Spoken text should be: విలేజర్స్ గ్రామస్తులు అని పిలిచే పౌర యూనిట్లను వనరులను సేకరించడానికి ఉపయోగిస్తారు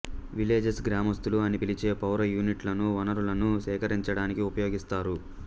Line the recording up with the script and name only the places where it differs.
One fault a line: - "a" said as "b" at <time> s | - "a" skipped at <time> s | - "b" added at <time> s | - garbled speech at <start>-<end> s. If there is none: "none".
none